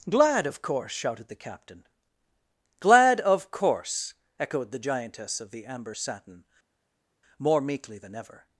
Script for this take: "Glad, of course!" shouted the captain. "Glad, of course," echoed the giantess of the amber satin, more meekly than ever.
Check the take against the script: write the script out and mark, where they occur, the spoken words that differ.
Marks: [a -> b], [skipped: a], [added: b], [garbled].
"Glad, of course!" shouted the captain. "Glad, of course," echoed the giantess of the amber satin, more meekly than ever.